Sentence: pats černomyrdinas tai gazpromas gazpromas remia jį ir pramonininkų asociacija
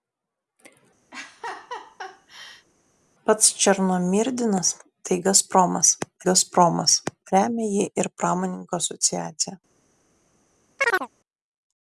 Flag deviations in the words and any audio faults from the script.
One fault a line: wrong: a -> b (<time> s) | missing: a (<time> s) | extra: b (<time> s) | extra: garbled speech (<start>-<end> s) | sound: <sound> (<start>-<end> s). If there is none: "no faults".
sound: laugh (1.1-2.7 s)
sound: chirp (10.8-11.1 s)